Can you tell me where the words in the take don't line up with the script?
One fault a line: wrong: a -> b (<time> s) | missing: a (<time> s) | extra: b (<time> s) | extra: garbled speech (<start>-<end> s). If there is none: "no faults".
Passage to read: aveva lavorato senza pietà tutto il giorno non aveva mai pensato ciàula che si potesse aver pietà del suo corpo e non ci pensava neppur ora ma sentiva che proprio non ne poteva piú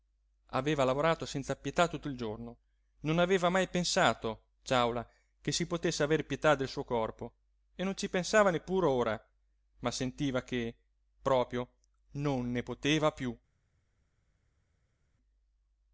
no faults